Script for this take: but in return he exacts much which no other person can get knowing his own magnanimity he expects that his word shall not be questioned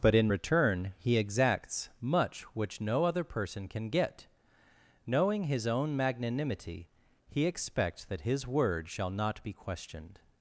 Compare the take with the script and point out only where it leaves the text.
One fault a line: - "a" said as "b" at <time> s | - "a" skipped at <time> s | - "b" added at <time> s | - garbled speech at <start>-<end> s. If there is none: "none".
none